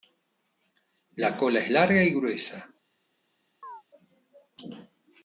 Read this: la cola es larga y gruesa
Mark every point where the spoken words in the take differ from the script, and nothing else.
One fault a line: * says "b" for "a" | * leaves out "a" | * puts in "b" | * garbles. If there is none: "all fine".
all fine